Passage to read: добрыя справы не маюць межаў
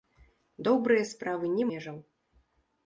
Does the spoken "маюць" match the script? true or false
false